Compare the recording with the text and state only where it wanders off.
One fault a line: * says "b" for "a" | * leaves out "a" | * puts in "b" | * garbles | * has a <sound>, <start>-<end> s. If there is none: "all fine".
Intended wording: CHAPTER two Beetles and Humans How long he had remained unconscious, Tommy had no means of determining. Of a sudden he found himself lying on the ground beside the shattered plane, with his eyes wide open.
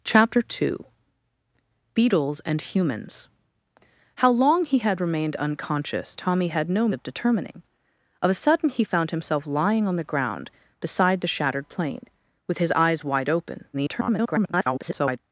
* leaves out "means"
* garbles